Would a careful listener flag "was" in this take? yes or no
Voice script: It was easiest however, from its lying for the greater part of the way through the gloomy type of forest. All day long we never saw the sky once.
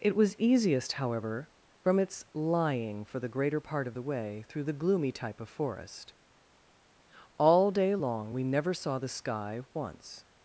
no